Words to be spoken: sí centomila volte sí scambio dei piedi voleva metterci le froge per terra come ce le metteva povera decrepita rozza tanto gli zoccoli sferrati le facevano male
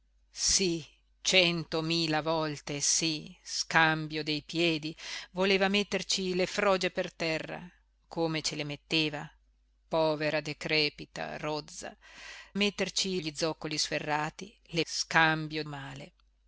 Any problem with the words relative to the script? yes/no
yes